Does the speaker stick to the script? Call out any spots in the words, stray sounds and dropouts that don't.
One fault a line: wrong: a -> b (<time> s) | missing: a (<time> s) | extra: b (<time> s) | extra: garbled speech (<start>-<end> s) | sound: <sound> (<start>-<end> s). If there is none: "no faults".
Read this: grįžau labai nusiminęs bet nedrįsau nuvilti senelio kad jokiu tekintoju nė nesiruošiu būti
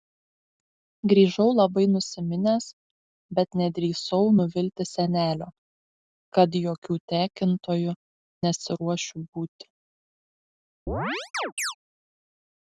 missing: nė (8.0 s)
sound: chirp (10.9-11.7 s)